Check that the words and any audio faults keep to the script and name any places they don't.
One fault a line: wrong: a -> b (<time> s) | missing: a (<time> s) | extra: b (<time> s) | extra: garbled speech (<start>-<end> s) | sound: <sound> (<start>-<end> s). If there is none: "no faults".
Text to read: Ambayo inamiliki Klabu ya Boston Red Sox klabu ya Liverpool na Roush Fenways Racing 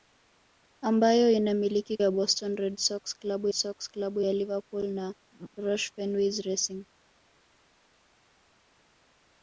missing: Klabu (2.0 s)
extra: Sox klabu (3.5 s)